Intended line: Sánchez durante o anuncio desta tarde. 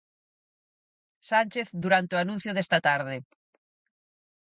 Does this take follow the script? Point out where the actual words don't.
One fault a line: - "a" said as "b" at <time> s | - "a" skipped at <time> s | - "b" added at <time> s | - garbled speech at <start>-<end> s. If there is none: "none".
none